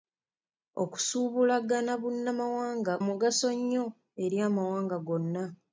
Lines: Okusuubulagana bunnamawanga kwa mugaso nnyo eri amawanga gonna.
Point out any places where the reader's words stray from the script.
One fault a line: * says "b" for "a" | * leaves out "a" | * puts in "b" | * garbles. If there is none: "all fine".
* leaves out "kwa"